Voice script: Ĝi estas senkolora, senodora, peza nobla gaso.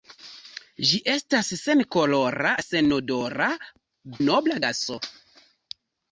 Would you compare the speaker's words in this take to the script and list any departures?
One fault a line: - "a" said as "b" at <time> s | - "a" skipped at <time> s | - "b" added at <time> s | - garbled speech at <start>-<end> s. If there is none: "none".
- "peza" skipped at 3.5 s